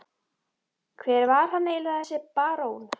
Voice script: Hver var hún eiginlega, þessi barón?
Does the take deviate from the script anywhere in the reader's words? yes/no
yes